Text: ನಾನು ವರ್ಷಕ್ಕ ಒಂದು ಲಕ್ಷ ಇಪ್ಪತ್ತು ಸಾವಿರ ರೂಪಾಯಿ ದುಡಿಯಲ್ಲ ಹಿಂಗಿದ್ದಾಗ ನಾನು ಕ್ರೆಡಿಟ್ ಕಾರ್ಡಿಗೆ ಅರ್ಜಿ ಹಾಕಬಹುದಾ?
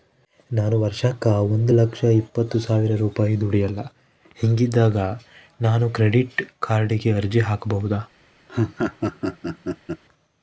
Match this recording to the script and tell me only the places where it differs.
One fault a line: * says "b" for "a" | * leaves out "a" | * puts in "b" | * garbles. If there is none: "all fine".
all fine